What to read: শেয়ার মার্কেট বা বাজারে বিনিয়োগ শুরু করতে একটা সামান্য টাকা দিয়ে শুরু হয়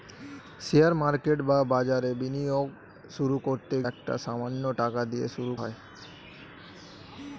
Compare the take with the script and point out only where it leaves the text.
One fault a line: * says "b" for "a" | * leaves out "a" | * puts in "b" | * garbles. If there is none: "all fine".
all fine